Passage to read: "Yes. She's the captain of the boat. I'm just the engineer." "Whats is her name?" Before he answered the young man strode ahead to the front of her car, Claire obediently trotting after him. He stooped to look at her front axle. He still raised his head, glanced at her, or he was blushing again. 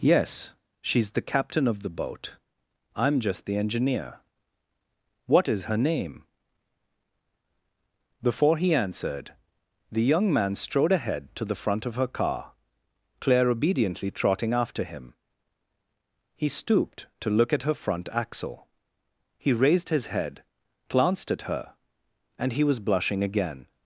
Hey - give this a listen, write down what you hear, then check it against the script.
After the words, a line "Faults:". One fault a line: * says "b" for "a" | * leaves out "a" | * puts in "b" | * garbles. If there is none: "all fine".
"Yes. She's the captain of the boat. I'm just the engineer." "What is her name?" Before he answered the young man strode ahead to the front of her car, Claire obediently trotting after him. He stooped to look at her front axle. He raised his head, glanced at her, and he was blushing again.
Faults:
* says "What" for "Whats"
* leaves out "still"
* says "and" for "or"